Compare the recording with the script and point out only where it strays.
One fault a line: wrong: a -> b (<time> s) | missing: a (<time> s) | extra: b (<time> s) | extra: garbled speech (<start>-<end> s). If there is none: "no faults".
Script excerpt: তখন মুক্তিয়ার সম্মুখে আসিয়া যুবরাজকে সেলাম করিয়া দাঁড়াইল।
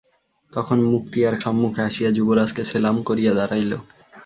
no faults